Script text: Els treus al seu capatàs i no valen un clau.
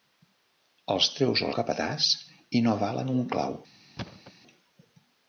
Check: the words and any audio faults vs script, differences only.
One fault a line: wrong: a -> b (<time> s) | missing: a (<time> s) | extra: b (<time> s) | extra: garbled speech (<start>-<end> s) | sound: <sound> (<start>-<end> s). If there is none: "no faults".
missing: seu (1.5 s)
sound: thud (4.0-4.3 s)